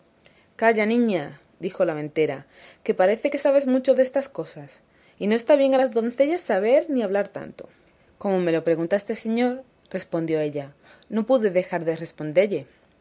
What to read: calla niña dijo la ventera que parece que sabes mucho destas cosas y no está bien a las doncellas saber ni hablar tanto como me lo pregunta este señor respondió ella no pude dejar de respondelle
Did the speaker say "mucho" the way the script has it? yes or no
yes